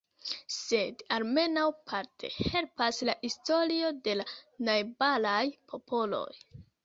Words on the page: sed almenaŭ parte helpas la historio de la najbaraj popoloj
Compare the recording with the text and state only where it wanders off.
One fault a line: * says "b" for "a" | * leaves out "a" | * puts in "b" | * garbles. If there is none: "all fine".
all fine